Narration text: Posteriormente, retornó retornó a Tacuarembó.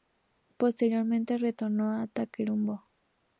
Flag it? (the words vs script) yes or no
yes